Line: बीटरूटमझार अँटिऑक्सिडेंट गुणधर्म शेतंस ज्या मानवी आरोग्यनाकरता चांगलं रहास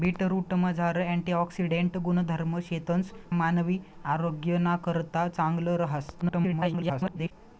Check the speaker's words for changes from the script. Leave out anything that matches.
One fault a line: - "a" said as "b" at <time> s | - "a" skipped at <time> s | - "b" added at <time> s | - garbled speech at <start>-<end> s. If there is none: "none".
- "ज्या" skipped at 3.1 s
- garbled speech at 6.2-7.3 s